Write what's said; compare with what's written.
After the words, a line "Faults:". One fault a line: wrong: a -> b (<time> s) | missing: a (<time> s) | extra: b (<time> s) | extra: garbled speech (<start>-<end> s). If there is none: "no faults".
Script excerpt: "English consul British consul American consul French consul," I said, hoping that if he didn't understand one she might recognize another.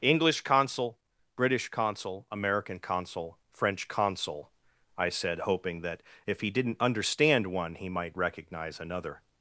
"English consul British consul American consul French consul," I said, hoping that if he didn't understand one he might recognize another.
Faults:
wrong: she -> he (7.8 s)